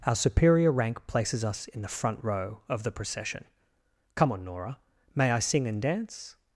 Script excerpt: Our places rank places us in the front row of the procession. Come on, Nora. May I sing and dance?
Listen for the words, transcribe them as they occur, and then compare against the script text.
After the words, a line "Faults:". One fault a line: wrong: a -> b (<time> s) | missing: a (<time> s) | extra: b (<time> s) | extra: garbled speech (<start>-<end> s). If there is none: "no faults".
Our superior rank places us in the front row of the procession. Come on, Nora. May I sing and dance?
Faults:
wrong: places -> superior (0.1 s)